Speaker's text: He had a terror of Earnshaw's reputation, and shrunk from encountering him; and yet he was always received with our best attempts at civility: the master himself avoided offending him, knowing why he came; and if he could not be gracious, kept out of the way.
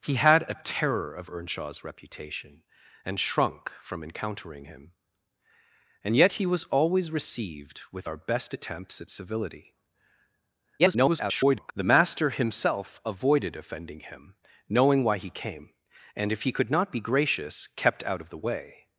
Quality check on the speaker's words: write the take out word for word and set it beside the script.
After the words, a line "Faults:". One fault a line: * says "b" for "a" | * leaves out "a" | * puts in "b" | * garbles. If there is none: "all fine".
He had a terror of Earnshaw's reputation, and shrunk from encountering him; and yet he was always received with our best attempts at civility: [garbled] the master himself avoided offending him, knowing why he came; and if he could not be gracious, kept out of the way.
Faults:
* garbles